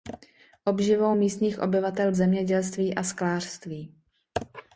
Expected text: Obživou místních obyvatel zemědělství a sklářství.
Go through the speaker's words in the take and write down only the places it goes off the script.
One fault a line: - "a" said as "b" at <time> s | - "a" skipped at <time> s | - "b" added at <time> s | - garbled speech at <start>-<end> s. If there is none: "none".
none